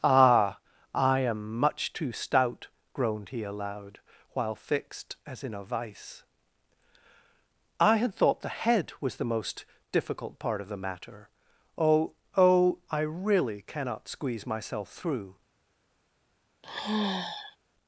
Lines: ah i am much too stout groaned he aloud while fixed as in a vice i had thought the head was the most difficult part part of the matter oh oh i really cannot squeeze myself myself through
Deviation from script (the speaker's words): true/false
true